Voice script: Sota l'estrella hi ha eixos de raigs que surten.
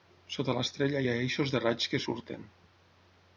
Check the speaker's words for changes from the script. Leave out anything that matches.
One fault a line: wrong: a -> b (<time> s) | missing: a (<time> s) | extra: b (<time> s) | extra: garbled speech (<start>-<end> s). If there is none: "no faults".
no faults